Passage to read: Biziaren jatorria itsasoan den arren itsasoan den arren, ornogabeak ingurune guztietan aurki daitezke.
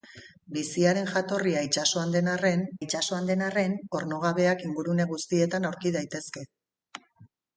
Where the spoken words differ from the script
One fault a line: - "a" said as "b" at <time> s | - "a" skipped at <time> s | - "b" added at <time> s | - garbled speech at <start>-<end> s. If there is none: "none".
none